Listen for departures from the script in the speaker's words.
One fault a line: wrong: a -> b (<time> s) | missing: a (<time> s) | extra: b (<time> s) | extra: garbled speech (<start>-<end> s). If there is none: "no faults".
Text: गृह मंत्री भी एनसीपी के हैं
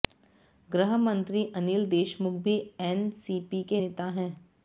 extra: अनिल देशमुख (1.6 s)
extra: नेता (3.7 s)